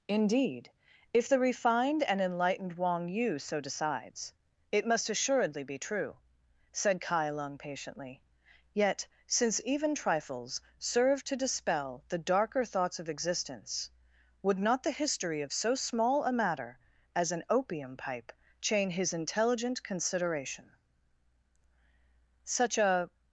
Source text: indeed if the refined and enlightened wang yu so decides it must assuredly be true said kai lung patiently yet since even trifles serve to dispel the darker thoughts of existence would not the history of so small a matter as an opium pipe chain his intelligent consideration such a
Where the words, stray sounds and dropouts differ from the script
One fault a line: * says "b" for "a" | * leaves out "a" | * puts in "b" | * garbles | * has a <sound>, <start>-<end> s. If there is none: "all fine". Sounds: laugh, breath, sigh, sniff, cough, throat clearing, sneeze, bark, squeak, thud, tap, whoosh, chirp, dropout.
all fine